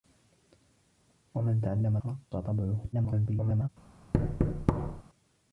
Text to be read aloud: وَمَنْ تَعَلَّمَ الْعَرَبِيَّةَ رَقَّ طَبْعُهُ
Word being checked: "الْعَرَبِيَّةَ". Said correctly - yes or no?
no